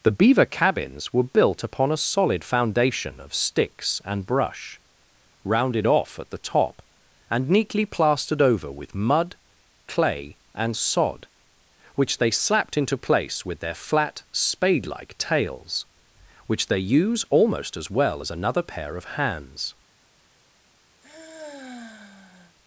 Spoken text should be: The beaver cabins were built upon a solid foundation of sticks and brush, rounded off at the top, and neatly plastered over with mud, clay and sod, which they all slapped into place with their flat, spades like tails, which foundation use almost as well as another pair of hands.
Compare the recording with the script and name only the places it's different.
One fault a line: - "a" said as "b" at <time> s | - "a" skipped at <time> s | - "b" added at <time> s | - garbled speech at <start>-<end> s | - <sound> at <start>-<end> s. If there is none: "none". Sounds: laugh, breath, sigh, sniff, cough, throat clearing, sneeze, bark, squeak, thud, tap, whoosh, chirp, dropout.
- "all" skipped at 12.3 s
- "spades" said as "spade" at 14.3 s
- "foundation" said as "they" at 16.7 s
- sigh at 21.0-22.6 s